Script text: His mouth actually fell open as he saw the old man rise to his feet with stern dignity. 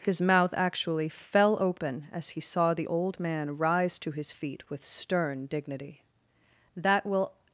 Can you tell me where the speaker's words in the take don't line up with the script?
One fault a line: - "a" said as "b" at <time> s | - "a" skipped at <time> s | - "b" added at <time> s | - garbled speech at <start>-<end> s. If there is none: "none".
- "That will" added at 6.8 s